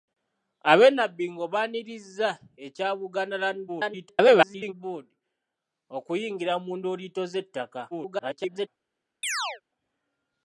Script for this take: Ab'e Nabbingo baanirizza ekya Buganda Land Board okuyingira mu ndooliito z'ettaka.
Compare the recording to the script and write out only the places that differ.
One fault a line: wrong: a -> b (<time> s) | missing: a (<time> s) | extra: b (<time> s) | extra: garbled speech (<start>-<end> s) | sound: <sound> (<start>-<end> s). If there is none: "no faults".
extra: garbled speech (3.7-4.7 s)
extra: garbled speech (7.9-8.7 s)
sound: chirp (9.2-9.6 s)